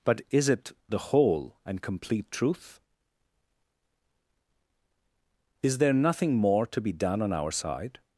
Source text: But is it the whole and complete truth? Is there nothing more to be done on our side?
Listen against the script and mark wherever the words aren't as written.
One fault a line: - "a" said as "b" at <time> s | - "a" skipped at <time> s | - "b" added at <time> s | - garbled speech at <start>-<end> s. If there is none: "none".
none